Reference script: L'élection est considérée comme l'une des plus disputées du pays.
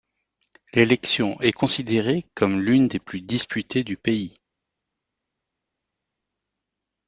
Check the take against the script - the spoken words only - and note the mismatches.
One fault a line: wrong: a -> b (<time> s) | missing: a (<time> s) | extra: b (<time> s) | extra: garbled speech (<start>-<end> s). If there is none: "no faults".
no faults